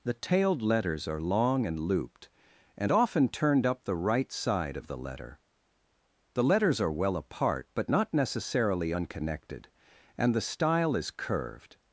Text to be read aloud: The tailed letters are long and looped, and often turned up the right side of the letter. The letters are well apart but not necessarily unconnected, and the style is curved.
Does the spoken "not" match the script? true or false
true